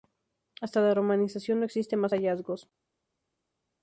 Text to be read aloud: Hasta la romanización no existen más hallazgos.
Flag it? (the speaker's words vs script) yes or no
no